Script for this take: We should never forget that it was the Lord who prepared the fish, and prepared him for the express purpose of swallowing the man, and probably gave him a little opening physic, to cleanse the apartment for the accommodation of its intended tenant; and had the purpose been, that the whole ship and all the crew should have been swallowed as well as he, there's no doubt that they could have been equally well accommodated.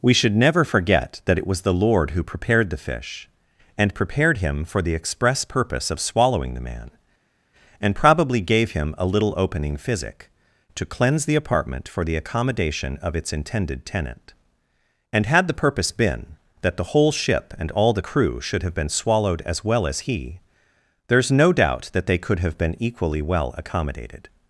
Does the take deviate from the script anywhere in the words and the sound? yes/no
no